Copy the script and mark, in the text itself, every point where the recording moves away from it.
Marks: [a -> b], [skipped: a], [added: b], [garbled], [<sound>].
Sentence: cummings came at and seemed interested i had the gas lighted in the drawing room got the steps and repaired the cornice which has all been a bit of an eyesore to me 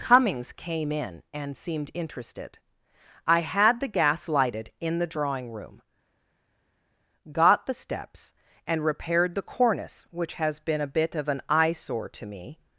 cummings came [at -> in] and seemed interested i had the gas lighted in the drawing room got the steps and repaired the cornice which has [skipped: all] been a bit of an eyesore to me